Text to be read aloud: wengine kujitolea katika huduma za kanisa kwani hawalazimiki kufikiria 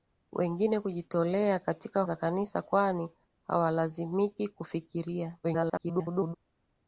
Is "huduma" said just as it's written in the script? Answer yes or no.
no